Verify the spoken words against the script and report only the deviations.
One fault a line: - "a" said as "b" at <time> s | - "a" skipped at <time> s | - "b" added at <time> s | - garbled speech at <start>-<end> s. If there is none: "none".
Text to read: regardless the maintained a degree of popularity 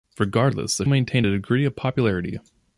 none